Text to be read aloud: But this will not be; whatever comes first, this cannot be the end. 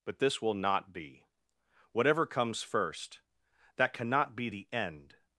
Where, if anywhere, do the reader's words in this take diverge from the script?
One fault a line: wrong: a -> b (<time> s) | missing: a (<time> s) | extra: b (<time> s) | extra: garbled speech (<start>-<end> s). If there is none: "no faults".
wrong: this -> that (3.8 s)